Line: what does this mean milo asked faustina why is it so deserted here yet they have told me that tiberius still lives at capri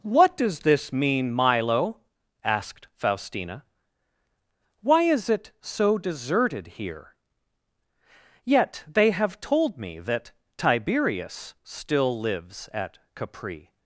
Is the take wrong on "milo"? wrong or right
right